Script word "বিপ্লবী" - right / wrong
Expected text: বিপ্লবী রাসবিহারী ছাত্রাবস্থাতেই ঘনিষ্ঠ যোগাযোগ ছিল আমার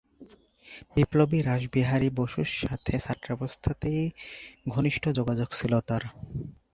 right